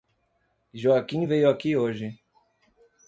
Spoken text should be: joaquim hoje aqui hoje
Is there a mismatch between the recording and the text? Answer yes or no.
yes